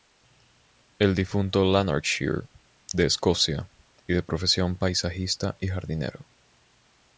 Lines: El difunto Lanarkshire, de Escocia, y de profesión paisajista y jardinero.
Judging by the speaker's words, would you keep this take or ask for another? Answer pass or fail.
pass